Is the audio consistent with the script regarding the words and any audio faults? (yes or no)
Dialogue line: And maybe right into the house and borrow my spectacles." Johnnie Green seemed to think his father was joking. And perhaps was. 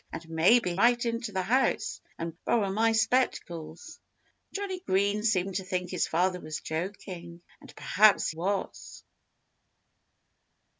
yes